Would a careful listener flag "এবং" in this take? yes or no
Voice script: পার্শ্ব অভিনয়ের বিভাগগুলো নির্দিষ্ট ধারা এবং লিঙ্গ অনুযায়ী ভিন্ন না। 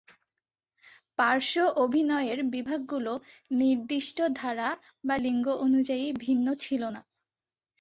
yes